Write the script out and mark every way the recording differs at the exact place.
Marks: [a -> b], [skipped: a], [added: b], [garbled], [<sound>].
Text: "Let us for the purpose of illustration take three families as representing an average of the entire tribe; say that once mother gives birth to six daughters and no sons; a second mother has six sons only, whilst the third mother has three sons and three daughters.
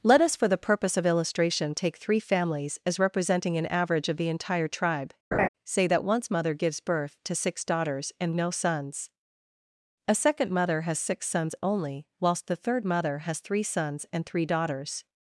"Let us for the purpose of illustration take three families as representing an average of the entire tribe; [laugh] say that once mother gives birth to six daughters and no sons; a second mother has six sons only, whilst the third mother has three sons and three daughters.